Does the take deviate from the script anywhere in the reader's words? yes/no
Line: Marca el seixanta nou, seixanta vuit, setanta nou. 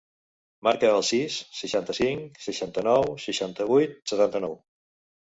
yes